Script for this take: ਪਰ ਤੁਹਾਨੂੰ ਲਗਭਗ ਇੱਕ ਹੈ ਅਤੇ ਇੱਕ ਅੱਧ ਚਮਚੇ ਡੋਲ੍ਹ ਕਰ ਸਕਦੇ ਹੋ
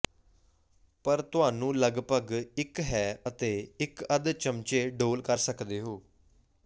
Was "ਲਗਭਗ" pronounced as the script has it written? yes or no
yes